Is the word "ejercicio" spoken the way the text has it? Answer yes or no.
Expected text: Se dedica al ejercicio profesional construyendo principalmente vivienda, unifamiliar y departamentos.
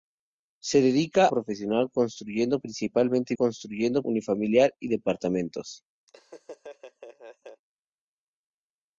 no